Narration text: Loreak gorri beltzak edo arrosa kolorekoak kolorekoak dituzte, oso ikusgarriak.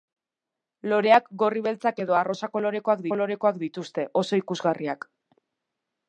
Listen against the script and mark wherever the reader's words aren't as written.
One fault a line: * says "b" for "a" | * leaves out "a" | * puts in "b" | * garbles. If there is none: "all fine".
all fine